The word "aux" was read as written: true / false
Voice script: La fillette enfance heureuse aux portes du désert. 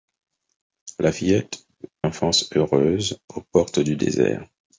true